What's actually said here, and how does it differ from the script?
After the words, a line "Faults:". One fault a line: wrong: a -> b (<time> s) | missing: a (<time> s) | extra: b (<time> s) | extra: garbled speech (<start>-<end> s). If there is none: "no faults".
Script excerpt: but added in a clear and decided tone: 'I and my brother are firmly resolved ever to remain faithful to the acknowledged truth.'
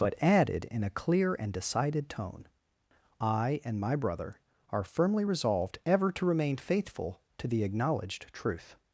but added in a clear and decided tone: 'I and my brother are firmly resolved ever to remain faithful to the acknowledged truth.'
Faults:
no faults